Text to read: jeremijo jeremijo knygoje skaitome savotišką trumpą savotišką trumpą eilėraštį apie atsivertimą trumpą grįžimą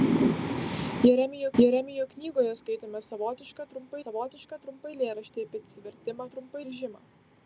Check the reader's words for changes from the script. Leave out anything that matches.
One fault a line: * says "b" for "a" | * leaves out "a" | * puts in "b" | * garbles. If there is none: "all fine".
all fine